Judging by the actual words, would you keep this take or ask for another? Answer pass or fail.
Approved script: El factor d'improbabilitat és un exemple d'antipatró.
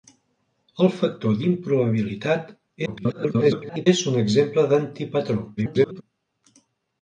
fail